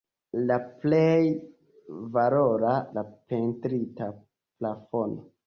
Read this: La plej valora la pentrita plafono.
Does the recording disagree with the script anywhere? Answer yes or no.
no